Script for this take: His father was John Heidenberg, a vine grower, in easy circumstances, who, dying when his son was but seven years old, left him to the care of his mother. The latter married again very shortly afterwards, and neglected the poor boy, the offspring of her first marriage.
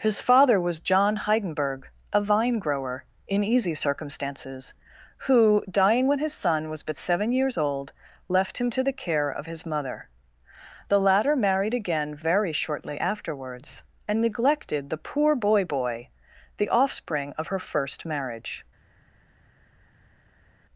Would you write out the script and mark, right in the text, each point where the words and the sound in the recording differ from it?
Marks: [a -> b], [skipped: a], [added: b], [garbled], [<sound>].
His father was John Heidenberg, a vine grower, in easy circumstances, who, dying when his son was but seven years old, left him to the care of his mother. The latter married again very shortly afterwards, and neglected the poor boy, [added: boy] the offspring of her first marriage.